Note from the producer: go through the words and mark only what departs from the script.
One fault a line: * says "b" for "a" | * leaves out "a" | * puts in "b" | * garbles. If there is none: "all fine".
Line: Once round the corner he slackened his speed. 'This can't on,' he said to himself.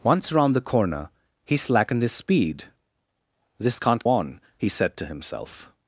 all fine